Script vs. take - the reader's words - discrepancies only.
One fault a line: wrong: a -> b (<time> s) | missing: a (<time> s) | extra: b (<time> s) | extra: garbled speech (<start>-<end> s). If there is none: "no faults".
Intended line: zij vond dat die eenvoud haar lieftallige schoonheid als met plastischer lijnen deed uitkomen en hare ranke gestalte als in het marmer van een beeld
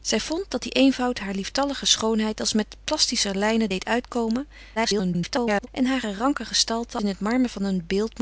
extra: garbled speech (4.8-5.7 s)
missing: als (7.0 s)